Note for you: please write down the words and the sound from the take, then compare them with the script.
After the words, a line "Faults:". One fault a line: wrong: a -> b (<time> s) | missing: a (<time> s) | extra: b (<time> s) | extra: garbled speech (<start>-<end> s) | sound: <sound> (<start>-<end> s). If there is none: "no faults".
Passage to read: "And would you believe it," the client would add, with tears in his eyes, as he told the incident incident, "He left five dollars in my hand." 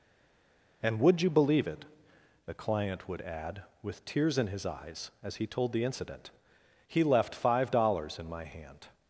"And would you believe it," the client would add, with tears in his eyes, as he told the incident, "He left five dollars in my hand."
Faults:
missing: incident (6.3 s)